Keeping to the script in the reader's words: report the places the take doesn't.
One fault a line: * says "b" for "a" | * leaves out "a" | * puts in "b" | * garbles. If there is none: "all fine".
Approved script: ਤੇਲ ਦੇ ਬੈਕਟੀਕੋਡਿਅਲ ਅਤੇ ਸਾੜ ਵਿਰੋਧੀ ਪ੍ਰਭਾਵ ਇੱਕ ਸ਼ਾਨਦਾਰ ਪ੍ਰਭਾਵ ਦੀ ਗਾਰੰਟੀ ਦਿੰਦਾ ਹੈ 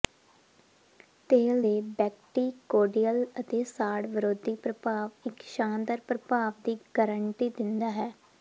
all fine